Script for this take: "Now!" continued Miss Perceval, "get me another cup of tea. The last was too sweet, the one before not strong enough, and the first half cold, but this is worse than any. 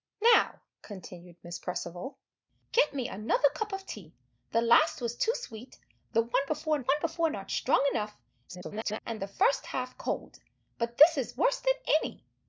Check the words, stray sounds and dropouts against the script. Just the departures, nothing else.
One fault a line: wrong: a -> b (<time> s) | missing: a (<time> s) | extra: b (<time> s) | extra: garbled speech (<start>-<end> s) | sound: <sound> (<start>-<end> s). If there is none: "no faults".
extra: one before (6.8 s)
extra: garbled speech (8.5-9.0 s)